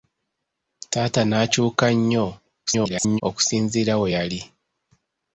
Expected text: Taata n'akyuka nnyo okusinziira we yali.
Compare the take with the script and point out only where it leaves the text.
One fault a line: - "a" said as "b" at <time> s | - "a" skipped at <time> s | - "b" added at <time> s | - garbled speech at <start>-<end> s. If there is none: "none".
- garbled speech at 2.7-3.2 s